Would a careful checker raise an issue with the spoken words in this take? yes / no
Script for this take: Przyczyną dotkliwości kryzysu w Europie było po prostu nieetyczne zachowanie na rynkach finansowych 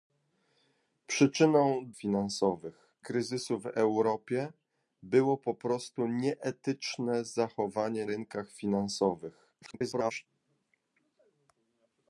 yes